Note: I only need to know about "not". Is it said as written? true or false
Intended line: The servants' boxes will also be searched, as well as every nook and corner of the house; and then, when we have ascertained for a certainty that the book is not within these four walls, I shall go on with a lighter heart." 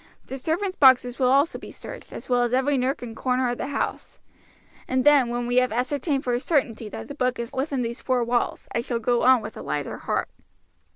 false